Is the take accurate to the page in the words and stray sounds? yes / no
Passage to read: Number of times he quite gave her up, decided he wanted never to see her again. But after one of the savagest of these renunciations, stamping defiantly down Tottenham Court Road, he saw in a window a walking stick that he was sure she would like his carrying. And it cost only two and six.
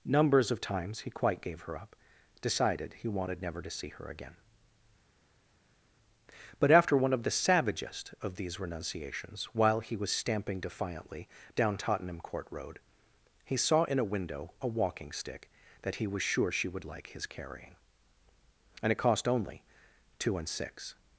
no